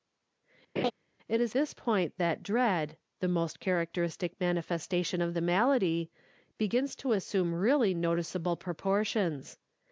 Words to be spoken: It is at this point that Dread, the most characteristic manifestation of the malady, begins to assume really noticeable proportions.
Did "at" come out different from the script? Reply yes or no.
yes